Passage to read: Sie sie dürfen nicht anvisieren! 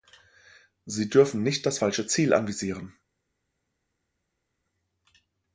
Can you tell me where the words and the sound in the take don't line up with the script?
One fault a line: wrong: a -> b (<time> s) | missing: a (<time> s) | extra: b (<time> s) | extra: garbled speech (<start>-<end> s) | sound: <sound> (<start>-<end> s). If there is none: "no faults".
missing: sie (1.1 s)
extra: das falsche Ziel (1.7 s)